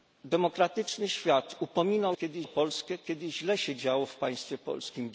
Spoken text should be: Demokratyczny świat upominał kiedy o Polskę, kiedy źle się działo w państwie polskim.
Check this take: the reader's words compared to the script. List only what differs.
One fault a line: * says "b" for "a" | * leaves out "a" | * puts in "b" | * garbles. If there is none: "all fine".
all fine